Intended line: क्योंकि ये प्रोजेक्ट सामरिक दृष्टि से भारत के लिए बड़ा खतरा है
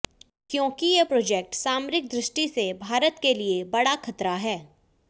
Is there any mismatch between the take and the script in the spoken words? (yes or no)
no